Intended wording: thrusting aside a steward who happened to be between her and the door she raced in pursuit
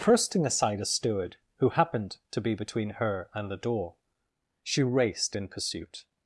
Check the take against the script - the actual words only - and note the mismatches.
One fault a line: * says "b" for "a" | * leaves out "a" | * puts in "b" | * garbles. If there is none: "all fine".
all fine